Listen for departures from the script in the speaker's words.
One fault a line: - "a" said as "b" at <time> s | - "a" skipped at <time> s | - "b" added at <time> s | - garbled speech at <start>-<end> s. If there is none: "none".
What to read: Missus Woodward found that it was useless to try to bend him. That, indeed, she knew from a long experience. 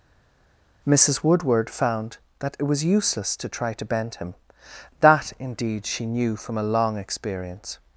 none